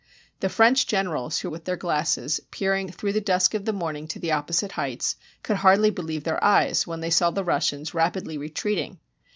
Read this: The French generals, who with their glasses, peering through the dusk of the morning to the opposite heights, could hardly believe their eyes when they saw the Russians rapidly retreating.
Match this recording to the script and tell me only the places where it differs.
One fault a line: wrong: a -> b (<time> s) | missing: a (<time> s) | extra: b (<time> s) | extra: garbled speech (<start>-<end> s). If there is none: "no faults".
no faults